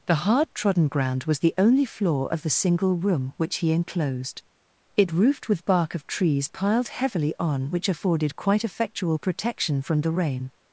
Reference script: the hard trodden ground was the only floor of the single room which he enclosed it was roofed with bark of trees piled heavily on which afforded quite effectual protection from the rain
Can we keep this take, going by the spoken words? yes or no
no